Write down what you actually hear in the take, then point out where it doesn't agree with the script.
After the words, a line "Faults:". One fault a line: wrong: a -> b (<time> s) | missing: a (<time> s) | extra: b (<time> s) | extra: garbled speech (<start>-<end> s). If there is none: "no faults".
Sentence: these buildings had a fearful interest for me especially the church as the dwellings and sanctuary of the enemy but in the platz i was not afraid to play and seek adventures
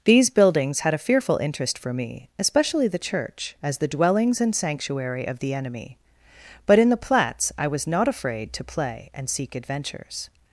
these buildings had a fearful interest for me especially the church as the dwellings and sanctuary of the enemy but in the platz i was not afraid to play and seek adventures
Faults:
no faults